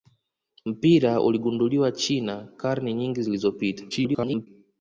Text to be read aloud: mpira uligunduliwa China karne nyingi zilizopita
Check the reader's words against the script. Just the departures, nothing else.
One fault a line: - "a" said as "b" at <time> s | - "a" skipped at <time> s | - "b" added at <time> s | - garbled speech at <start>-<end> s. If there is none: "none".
- garbled speech at 3.9-4.5 s